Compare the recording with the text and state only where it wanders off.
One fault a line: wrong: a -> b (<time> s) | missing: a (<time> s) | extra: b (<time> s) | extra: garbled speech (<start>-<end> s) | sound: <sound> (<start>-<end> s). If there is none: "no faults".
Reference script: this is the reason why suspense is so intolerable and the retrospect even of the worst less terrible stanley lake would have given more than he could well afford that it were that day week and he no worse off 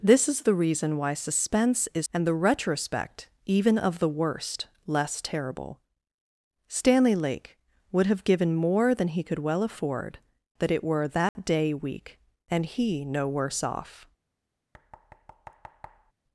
missing: so intolerable (2.1 s)
sound: dropout (11.3-11.4 s)
sound: thud (14.7-16.1 s)